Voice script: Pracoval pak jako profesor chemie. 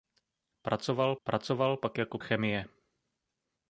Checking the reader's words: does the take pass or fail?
fail